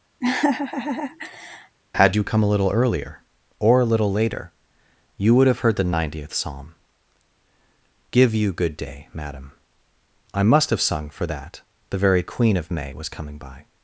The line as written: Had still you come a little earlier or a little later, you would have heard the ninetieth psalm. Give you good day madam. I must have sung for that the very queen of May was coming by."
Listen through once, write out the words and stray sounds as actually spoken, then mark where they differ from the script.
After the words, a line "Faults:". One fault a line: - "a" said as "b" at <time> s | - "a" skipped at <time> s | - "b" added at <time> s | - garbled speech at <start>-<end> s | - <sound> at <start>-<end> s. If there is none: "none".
Had you come a little earlier or a little later, you would have heard the ninetieth psalm. Give you good day madam. I must have sung for that the very queen of May was coming by."
Faults:
- laugh at 0.2-1.8 s
- "still" skipped at 2.1 s